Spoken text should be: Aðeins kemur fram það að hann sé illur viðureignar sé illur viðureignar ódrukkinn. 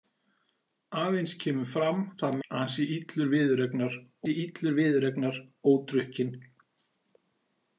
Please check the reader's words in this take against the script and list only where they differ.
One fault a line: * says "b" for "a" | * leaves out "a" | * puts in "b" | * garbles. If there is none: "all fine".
all fine